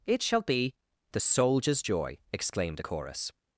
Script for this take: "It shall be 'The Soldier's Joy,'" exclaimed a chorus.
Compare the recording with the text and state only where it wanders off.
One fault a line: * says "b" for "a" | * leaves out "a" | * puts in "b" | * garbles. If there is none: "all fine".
all fine